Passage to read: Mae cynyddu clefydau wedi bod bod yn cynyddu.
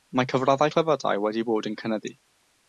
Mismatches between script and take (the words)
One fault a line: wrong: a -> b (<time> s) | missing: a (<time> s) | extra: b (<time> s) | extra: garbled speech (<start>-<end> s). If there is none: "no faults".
wrong: cynyddu -> cyfraddau (0.3 s)
missing: bod (1.7 s)